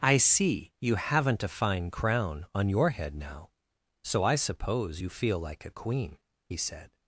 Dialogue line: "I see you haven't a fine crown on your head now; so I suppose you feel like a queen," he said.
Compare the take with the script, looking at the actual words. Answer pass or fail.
pass